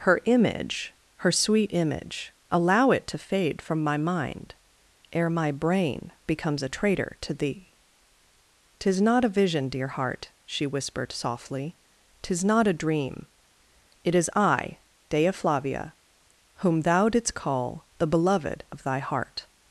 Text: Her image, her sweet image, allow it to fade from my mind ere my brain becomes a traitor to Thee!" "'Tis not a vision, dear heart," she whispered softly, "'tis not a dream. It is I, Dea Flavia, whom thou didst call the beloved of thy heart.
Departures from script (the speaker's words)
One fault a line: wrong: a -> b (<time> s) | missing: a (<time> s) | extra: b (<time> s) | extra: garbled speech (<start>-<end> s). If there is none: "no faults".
no faults